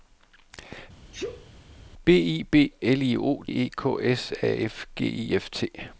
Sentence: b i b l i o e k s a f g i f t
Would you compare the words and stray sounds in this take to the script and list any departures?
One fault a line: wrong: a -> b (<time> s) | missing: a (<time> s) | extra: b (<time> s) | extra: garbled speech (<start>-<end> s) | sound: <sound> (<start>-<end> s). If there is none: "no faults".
sound: sneeze (1.1-1.5 s)